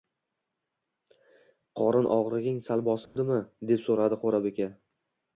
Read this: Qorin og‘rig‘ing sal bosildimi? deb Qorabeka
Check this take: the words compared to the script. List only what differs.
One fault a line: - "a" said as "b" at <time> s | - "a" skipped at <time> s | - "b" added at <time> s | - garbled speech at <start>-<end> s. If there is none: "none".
- "so‘radi" added at 3.8 s